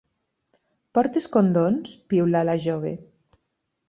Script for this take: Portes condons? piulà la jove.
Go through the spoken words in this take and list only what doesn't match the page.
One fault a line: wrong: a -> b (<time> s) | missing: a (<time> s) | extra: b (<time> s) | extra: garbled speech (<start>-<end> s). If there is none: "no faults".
no faults